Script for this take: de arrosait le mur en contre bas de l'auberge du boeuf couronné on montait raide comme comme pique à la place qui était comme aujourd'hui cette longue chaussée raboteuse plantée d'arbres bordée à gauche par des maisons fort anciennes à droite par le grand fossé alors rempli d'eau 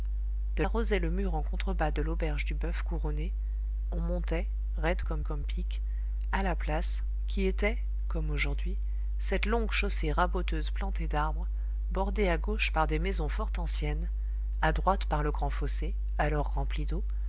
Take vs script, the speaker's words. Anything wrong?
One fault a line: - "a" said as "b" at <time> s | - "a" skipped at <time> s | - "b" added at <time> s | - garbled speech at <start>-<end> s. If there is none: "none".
none